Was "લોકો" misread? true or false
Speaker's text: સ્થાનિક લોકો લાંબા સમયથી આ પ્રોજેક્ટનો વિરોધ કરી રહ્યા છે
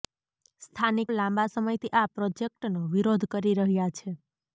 true